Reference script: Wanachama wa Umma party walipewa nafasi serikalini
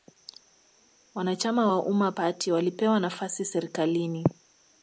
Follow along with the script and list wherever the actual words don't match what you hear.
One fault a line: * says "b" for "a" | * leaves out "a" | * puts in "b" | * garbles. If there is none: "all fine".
all fine